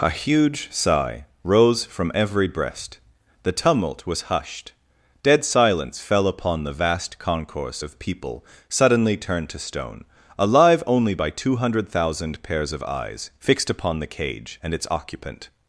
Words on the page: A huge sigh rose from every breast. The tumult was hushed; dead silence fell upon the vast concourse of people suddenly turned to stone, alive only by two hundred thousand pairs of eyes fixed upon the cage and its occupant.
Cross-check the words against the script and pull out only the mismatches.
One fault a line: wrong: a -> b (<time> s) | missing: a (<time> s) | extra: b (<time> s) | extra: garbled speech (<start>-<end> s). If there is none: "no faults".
no faults